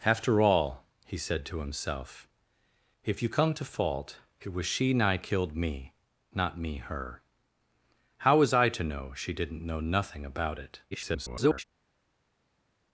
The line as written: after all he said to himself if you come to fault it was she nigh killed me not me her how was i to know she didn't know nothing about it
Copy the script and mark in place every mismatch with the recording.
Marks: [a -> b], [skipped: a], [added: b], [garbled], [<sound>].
after all he said to himself if you come to fault it was she nigh killed me not me her how was i to know she didn't know nothing about it [garbled]